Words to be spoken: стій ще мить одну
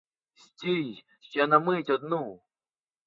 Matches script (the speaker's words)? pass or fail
fail